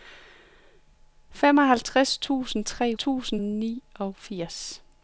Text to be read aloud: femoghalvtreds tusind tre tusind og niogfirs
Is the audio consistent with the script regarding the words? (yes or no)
yes